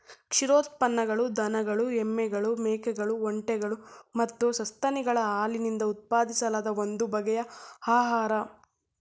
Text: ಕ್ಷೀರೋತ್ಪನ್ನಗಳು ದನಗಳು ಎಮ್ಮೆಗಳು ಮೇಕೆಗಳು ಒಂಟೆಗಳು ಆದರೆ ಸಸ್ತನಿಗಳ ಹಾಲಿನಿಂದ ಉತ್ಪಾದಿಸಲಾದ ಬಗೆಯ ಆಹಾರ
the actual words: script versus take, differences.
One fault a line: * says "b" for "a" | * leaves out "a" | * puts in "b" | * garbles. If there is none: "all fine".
* says "ಮತ್ತು" for "ಆದರೆ"
* puts in "ಒಂದು"